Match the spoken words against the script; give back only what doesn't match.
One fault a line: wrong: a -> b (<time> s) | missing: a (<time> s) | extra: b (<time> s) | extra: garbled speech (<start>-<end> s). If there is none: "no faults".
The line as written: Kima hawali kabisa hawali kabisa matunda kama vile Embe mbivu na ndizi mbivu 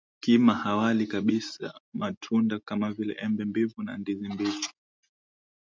missing: hawali kabisa (1.8 s)